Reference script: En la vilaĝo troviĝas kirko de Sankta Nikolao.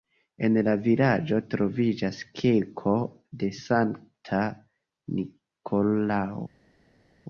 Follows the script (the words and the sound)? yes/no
yes